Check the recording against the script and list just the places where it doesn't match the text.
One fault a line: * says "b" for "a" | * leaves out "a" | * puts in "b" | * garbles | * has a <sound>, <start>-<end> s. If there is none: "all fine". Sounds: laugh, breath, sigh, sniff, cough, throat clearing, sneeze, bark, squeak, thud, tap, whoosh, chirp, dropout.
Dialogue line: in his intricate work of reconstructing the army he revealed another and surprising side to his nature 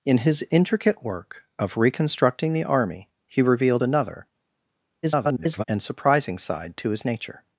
* garbles